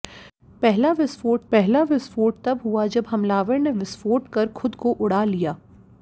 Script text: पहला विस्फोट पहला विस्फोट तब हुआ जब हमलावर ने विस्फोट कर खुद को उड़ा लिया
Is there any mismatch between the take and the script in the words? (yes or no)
no